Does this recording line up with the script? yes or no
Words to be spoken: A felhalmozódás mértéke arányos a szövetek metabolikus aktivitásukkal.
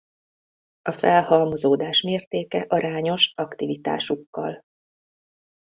no